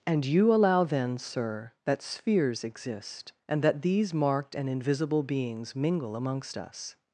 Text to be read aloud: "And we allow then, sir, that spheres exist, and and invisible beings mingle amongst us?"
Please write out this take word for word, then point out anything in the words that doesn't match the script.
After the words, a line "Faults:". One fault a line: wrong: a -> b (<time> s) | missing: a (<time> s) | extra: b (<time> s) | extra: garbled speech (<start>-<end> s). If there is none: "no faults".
"And you allow then, sir, that spheres exist, and that these marked and invisible beings mingle amongst us?"
Faults:
wrong: we -> you (0.2 s)
extra: that these marked (3.6 s)